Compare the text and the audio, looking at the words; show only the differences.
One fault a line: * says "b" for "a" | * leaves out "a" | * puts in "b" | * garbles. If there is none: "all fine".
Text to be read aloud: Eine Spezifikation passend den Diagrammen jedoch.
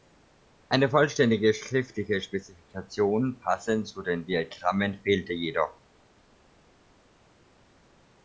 * puts in "vollständige schriftliche"
* puts in "zu"
* puts in "fehlte"